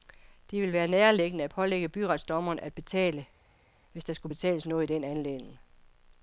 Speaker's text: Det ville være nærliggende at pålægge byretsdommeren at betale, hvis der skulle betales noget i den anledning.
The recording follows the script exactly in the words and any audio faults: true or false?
true